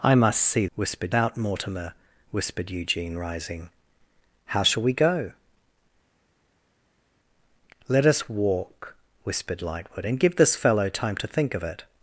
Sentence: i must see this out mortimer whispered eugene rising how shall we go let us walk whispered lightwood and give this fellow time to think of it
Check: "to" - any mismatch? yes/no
no